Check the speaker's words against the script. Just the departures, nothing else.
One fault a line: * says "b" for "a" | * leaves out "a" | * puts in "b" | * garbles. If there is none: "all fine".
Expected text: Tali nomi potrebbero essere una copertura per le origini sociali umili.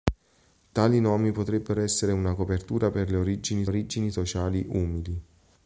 * puts in "origini"